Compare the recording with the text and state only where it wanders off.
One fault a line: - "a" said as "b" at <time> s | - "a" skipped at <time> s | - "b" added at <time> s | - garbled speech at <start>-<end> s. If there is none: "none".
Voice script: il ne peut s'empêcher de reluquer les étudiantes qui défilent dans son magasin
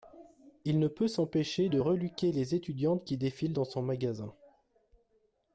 none